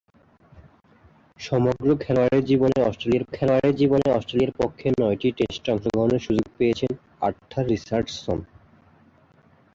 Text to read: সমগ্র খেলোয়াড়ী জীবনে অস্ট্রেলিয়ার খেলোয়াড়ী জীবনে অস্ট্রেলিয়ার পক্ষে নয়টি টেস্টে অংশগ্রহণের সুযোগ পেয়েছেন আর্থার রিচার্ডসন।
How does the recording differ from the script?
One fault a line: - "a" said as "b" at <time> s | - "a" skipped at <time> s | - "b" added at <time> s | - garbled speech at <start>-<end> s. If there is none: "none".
none